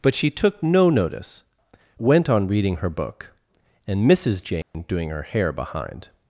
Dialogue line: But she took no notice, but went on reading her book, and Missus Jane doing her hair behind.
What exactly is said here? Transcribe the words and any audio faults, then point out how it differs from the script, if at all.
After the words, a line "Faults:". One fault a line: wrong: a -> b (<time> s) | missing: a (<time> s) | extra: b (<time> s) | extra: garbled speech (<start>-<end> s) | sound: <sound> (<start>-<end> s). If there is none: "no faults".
But she took no notice, went on reading her book, and Missus Jane doing her hair behind.
Faults:
missing: but (1.4 s)
sound: dropout (4.6-4.7 s)